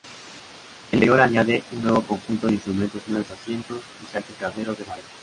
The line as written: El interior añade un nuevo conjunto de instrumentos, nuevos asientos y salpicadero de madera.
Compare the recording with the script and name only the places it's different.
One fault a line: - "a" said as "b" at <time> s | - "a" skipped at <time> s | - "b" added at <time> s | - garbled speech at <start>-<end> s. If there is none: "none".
none